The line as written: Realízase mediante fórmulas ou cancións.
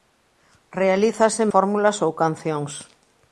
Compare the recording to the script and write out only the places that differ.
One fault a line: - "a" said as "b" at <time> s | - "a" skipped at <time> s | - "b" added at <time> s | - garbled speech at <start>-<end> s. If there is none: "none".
- "mediante" skipped at 1.4 s